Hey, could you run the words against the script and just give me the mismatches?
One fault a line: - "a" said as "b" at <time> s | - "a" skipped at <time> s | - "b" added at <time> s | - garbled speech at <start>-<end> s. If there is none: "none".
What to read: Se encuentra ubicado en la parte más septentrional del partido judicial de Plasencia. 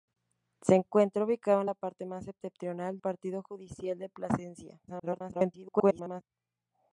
- "del" skipped at 3.0 s
- garbled speech at 4.9-6.2 s